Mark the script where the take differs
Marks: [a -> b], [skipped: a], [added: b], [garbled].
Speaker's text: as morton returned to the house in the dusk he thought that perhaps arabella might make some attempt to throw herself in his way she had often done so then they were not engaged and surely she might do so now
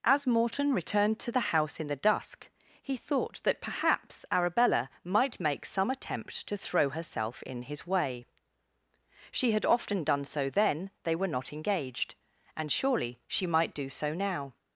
as morton returned to the house in the dusk he thought that perhaps arabella might make some attempt to throw herself in his way she had often done so then they were not engaged and surely she might do so now